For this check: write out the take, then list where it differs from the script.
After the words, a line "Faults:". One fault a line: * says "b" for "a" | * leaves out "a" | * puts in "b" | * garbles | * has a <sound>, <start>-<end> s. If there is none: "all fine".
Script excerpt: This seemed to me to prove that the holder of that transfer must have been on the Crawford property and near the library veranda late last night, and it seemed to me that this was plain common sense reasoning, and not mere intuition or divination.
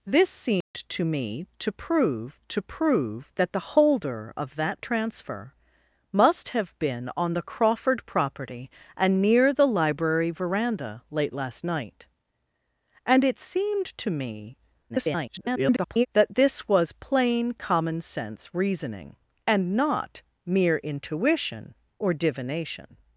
This seemed to me to prove to prove that the holder of that transfer must have been on the Crawford property and near the library veranda late last night, and it seemed to me [garbled] that this was plain common sense reasoning, and not mere intuition or divination.
Faults:
* has a dropout, 0.6-0.7 s
* puts in "to prove"
* garbles